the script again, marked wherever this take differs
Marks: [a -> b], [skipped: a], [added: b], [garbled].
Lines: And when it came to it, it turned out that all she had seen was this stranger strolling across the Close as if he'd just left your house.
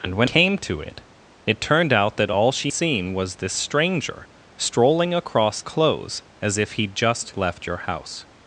And when [skipped: it] came to it, it turned out that all she [skipped: had] seen was this stranger strolling across [skipped: the] Close as if he'd just left your house.